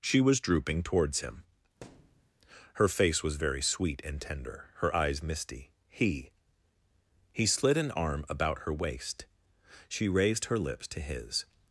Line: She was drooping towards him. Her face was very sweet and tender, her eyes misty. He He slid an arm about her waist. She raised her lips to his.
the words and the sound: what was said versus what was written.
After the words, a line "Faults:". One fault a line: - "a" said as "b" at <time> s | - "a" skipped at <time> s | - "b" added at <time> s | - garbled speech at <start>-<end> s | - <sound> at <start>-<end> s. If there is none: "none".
She was drooping towards him. Her face was very sweet and tender, her eyes misty. He He slid an arm about her waist. She raised her lips to his.
Faults:
- thud at 1.8-2.3 s